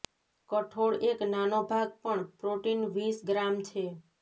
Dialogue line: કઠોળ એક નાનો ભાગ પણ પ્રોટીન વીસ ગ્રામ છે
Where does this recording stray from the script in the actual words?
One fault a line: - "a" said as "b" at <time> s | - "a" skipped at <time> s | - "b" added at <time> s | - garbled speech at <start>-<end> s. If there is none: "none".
none